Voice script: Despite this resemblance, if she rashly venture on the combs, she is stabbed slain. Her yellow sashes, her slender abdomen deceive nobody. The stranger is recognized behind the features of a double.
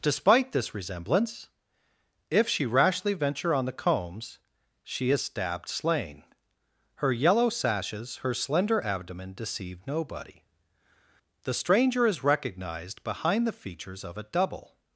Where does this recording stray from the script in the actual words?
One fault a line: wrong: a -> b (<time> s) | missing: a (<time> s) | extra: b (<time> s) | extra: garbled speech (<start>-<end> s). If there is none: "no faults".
no faults